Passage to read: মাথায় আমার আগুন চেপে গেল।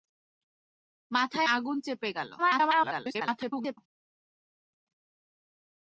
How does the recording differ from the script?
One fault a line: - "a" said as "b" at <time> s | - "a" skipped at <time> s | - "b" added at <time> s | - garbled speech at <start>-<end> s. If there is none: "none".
- "আমার" skipped at 1.5 s
- garbled speech at 2.4-3.8 s